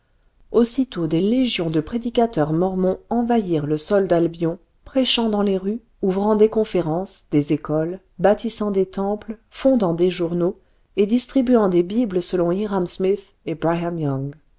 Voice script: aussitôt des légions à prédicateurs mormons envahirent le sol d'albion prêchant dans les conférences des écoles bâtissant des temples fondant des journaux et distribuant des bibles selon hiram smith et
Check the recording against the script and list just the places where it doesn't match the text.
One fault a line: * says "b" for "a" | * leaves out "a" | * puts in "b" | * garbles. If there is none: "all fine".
* says "de" for "à"
* puts in "rues ouvrant des"